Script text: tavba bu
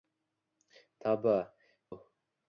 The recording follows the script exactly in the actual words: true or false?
true